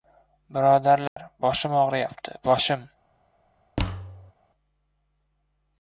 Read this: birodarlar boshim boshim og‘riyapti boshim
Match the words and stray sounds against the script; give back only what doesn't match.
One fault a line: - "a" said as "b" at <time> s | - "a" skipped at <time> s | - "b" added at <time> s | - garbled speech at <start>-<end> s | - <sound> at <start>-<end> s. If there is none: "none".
- dropout at 1.1-1.2 s
- "boshim" skipped at 1.7 s
- thud at 3.8-4.3 s